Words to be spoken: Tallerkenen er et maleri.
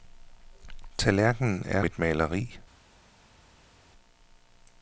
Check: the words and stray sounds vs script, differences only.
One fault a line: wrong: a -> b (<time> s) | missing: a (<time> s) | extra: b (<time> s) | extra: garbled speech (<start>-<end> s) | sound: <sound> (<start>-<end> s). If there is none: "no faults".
no faults